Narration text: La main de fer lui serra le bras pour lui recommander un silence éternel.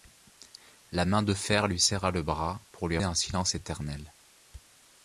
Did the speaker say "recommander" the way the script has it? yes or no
no